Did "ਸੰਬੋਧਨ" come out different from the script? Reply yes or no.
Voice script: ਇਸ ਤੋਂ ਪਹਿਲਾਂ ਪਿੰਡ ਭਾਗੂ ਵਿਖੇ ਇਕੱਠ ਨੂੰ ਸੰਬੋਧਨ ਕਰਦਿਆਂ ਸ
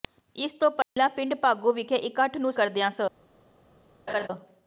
yes